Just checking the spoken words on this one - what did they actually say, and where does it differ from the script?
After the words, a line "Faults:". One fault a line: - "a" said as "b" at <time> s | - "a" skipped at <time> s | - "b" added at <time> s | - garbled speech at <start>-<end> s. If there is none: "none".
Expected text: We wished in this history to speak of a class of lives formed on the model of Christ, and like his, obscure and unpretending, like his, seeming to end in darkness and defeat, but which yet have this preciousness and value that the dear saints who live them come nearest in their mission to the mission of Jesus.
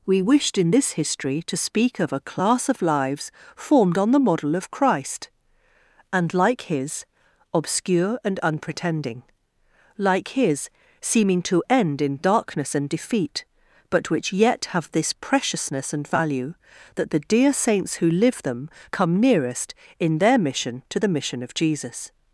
We wished in this history to speak of a class of lives formed on the model of Christ, and like his, obscure and unpretending, like his, seeming to end in darkness and defeat, but which yet have this preciousness and value that the dear saints who live them come nearest in their mission to the mission of Jesus.
Faults:
none